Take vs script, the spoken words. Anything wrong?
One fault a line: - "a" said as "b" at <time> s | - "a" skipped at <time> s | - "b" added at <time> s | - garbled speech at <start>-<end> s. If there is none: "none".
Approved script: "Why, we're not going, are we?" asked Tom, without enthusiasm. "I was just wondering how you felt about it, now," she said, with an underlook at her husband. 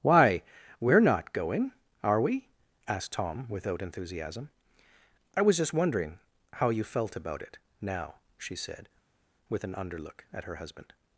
none